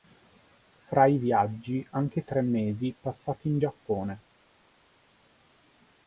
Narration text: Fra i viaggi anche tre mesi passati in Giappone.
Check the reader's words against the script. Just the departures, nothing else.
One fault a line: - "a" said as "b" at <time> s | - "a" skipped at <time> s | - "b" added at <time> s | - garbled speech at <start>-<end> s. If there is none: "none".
none